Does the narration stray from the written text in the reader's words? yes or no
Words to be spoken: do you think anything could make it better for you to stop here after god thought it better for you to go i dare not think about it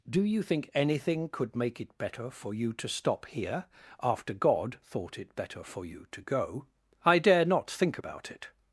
no